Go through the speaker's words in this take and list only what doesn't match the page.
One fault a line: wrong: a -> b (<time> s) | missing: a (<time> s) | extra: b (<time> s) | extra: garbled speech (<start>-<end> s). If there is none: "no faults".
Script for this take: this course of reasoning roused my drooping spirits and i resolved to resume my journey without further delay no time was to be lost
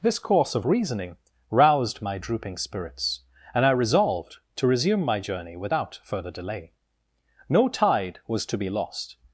wrong: time -> tide (7.7 s)